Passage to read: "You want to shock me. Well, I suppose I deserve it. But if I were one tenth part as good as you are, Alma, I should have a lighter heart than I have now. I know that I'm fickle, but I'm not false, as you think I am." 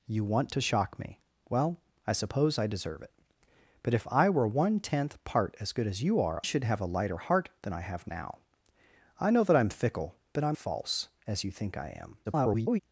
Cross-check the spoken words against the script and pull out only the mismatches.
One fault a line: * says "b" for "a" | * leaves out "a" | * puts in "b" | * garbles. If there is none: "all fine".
* leaves out "Alma I"
* leaves out "not"
* garbles